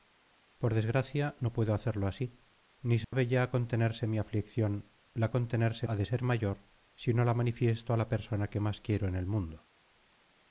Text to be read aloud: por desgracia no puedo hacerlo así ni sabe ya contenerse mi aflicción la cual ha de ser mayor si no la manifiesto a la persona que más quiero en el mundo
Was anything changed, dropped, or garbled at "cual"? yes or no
yes